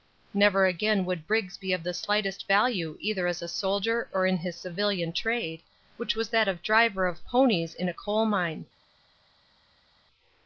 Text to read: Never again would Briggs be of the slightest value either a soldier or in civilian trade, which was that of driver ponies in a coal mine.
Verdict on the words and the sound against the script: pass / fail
fail